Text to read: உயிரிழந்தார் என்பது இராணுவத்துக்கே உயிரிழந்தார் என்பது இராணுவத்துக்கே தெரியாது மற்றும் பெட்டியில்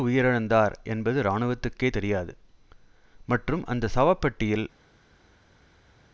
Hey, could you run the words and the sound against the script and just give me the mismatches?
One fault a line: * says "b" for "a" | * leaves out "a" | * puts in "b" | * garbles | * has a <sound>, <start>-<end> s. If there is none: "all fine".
* says "தெரியாது மற்றும் அந்த சவ" for "உயிரிழந்தார் என்பது இராணுவத்துக்கே தெரியாது மற்றும்"